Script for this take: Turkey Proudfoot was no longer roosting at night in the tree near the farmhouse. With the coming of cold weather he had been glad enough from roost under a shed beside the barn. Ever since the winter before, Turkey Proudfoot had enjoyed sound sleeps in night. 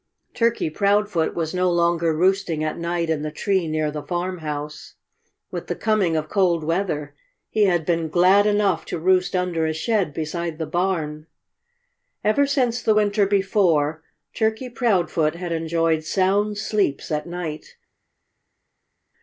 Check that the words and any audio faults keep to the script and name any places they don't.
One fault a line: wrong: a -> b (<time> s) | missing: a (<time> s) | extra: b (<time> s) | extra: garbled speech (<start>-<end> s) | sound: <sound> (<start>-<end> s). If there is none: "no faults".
wrong: from -> to (8.8 s)
wrong: in -> at (17.1 s)